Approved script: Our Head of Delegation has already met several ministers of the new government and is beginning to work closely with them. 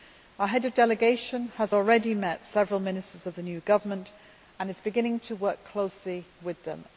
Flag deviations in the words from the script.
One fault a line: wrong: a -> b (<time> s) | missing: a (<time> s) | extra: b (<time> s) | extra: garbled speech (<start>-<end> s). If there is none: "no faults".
no faults